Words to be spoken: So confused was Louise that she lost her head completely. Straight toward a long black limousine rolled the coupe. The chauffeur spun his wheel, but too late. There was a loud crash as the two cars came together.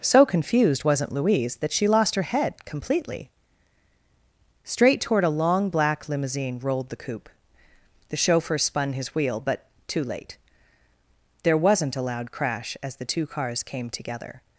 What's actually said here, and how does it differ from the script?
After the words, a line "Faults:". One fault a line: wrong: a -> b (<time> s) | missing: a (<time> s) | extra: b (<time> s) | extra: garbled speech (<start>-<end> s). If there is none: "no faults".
So confused wasn't Louise that she lost her head completely. Straight toward a long black limousine rolled the coupe. The chauffeur spun his wheel, but too late. There wasn't a loud crash as the two cars came together.
Faults:
wrong: was -> wasn't (0.8 s)
wrong: was -> wasn't (11.6 s)